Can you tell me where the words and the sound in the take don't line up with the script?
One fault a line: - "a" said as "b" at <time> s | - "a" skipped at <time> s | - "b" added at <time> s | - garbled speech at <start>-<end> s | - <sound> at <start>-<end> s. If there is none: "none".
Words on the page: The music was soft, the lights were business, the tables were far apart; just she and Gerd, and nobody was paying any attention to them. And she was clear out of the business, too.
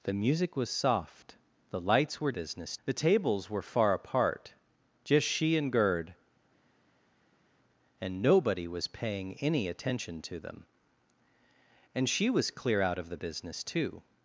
none